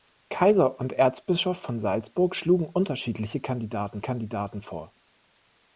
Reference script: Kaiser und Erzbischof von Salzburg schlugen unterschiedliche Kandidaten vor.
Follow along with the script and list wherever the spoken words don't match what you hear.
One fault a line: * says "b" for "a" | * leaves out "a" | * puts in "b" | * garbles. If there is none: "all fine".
* puts in "Kandidaten"